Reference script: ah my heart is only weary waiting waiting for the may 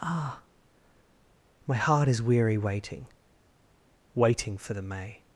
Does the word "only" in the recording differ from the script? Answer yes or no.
yes